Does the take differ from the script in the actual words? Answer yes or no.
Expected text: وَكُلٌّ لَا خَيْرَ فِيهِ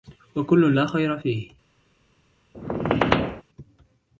no